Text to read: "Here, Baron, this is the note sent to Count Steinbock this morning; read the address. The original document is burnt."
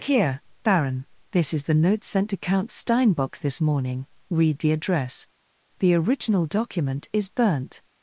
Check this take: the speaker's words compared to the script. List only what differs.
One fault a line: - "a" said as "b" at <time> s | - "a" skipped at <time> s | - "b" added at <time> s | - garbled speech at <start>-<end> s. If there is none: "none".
none